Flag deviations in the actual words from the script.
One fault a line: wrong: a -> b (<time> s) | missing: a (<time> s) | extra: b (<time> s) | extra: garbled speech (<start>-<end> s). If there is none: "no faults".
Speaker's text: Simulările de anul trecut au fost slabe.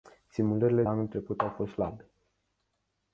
missing: de (0.8 s)